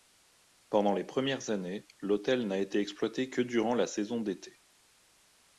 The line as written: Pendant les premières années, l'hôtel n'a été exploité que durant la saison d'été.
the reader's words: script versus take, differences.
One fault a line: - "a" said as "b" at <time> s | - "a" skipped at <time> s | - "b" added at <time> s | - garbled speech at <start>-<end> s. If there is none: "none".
none